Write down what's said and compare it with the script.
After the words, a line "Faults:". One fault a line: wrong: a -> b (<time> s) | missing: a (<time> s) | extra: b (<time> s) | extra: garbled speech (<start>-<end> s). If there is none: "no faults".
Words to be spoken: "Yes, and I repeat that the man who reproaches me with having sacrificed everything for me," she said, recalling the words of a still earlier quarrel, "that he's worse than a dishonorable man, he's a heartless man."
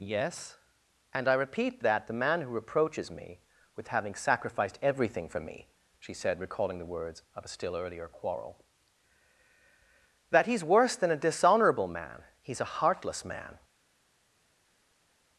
"Yes, and I repeat that the man who reproaches me with having sacrificed everything for me," she said, recalling the words of a still earlier quarrel, "that he's worse than a dishonorable man, he's a heartless man."
Faults:
no faults